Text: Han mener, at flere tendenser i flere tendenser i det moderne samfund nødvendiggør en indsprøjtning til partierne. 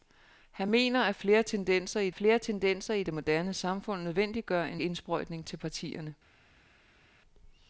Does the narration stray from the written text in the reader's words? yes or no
no